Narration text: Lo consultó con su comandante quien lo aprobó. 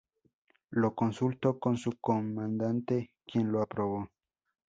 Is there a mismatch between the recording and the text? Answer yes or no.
no